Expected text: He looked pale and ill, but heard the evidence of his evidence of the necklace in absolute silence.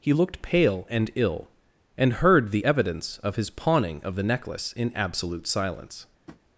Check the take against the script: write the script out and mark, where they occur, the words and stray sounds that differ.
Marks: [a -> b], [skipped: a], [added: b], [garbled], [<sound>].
He looked pale and ill, [but -> and] heard the evidence of his [evidence -> pawning] of the necklace in absolute silence. [tap]